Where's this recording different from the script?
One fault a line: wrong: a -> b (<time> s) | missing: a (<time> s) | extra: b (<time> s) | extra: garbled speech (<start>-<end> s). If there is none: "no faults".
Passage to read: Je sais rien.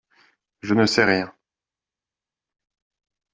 extra: ne (0.7 s)